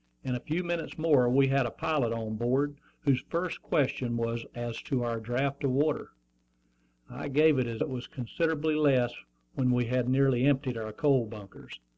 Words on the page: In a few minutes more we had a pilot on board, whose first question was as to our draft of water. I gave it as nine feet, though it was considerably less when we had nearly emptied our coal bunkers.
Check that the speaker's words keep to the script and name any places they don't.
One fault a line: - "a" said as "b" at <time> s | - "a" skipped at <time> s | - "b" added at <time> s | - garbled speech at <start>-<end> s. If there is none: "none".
- "nine feet though" skipped at 7.8 s